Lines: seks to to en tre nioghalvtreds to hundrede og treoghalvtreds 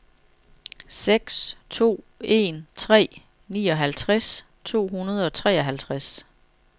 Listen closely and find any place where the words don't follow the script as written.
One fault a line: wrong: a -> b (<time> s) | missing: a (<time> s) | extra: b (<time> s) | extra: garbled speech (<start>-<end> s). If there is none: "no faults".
missing: to (2.0 s)